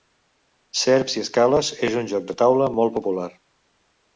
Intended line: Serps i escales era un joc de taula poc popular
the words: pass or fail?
fail